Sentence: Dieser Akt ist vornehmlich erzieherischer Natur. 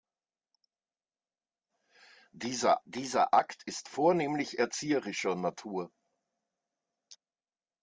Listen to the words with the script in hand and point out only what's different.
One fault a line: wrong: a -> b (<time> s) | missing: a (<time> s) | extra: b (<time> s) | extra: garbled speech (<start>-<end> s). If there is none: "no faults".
extra: dieser (2.8 s)